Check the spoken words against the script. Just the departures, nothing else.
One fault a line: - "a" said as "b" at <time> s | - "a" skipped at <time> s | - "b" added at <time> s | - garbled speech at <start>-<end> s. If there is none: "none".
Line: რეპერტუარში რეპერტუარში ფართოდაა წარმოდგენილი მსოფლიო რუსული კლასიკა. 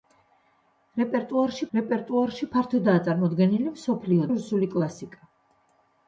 none